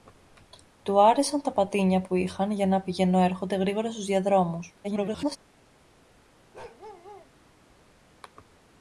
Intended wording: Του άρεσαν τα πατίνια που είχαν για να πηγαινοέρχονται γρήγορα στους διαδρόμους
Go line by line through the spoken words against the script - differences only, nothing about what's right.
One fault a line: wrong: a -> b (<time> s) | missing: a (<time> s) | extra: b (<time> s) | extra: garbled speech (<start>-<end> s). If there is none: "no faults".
extra: garbled speech (4.8-5.4 s)